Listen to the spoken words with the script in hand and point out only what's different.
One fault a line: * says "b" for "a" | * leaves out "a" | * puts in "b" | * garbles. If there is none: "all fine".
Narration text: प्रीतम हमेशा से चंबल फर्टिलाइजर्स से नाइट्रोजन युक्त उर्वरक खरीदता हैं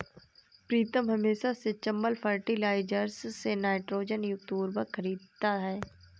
all fine